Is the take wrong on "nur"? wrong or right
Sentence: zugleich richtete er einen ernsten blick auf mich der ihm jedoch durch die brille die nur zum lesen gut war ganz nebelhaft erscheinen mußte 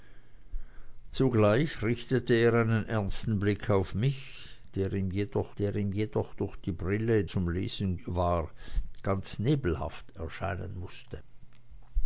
wrong